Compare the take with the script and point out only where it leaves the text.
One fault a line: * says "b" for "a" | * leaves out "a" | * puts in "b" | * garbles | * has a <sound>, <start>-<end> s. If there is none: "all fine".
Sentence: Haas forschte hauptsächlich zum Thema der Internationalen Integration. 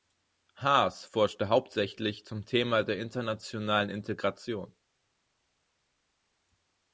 all fine